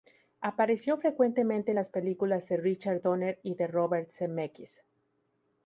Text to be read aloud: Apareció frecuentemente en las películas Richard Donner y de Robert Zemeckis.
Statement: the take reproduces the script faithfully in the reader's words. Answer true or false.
false